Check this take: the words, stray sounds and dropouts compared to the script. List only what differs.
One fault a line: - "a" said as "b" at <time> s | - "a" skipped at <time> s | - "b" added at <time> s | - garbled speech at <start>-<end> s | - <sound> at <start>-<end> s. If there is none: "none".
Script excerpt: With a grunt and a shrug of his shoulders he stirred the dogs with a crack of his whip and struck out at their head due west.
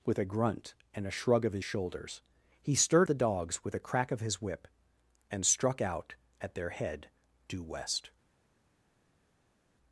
none